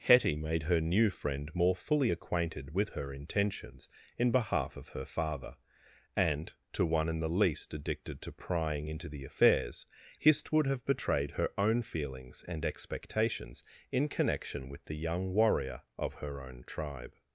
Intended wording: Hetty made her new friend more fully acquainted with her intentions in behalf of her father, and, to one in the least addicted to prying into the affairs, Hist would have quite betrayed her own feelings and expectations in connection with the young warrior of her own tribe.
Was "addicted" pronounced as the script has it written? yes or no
yes